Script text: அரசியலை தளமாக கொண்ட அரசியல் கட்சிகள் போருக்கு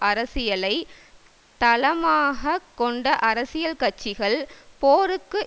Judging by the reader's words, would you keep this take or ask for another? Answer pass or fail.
pass